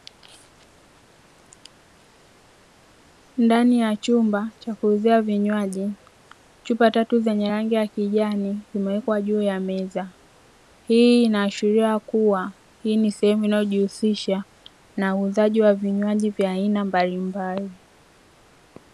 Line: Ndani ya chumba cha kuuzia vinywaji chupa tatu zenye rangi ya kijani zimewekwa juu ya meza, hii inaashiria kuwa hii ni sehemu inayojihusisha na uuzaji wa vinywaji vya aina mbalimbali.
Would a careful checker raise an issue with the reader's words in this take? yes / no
no